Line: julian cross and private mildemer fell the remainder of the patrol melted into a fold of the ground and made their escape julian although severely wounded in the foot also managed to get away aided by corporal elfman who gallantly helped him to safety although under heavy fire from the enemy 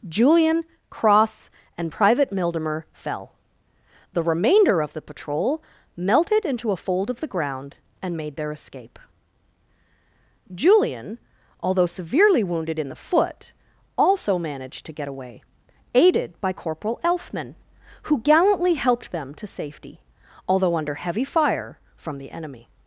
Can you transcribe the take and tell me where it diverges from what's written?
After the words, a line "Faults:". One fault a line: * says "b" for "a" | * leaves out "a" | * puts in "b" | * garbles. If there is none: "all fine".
julian cross and private mildemer fell the remainder of the patrol melted into a fold of the ground and made their escape julian although severely wounded in the foot also managed to get away aided by corporal elfman who gallantly helped them to safety although under heavy fire from the enemy
Faults:
* says "them" for "him"